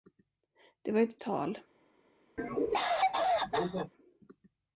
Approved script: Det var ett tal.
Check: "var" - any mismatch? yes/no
no